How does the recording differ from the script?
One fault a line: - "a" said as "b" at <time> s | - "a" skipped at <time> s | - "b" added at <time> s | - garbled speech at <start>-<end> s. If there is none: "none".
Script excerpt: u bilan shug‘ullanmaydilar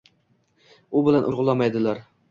none